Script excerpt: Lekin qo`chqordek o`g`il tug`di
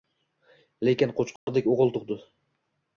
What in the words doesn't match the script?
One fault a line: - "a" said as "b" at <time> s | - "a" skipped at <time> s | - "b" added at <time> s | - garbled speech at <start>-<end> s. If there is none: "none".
none